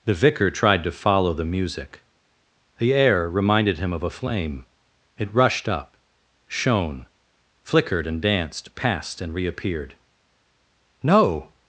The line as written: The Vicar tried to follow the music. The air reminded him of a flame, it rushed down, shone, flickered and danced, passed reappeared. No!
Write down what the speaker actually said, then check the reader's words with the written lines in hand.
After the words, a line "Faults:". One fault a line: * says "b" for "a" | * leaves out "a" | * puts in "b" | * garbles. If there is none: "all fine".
The Vicar tried to follow the music. The air reminded him of a flame, it rushed up, shone, flickered and danced, passed and reappeared. No!
Faults:
* says "up" for "down"
* puts in "and"